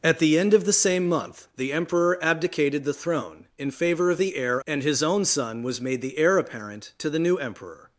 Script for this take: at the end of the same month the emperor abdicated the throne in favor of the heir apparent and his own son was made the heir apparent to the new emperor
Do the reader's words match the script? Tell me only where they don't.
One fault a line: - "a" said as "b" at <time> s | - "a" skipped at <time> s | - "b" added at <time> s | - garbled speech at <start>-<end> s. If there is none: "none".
- "apparent" skipped at 4.6 s